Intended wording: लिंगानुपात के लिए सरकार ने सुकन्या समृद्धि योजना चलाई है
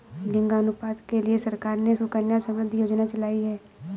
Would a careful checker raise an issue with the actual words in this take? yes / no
no